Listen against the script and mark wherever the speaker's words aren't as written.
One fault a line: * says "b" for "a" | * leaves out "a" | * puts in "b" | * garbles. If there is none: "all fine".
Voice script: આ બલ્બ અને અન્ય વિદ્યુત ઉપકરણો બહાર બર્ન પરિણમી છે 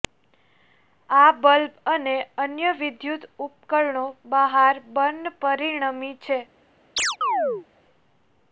all fine